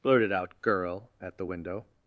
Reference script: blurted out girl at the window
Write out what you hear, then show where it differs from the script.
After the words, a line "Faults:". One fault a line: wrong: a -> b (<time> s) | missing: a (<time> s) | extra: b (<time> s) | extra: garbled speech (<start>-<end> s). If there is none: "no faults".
blurted out girl at the window
Faults:
no faults